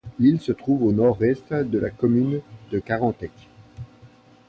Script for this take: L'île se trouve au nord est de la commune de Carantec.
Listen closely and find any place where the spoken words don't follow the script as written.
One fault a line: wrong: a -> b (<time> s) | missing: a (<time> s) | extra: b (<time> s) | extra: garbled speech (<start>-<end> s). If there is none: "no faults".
no faults